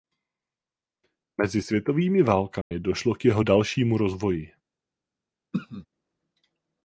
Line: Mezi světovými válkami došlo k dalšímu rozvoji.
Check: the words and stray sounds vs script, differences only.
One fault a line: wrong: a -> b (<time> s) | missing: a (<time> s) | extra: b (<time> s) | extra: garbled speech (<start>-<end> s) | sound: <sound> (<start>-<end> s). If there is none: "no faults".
sound: dropout (2.6-2.7 s)
extra: jeho (3.2 s)
sound: throat clearing (5.5-5.9 s)